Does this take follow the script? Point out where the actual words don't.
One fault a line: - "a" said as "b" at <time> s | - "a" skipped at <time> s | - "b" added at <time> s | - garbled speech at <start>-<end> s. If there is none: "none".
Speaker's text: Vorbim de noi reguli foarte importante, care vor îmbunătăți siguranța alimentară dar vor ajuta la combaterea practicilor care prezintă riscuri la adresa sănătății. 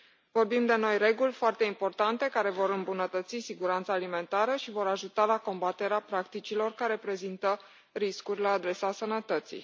- "dar" said as "și" at 4.5 s